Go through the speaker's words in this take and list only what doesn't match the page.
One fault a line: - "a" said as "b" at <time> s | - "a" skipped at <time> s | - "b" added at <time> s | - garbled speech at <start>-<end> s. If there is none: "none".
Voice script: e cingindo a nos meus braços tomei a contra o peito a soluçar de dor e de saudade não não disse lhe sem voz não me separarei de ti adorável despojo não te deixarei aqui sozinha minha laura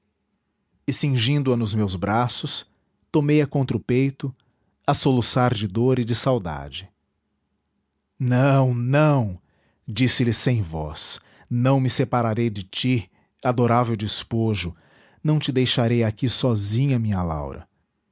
none